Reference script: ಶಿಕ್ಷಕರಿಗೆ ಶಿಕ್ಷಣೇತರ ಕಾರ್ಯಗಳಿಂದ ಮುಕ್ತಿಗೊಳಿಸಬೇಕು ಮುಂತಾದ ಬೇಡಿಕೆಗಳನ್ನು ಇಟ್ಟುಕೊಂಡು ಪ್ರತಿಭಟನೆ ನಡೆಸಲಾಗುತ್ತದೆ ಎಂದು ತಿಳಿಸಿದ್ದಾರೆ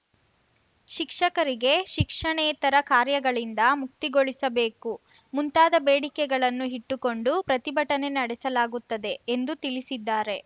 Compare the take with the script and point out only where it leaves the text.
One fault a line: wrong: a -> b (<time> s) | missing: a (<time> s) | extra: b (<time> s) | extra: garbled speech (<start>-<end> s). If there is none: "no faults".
no faults